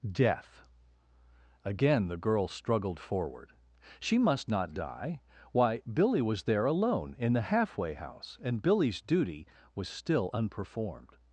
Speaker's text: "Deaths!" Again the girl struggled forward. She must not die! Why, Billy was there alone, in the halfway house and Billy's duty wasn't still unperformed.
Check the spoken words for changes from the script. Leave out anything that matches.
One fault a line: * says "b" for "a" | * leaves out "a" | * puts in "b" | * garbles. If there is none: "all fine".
* says "Death" for "Deaths"
* says "was" for "wasn't"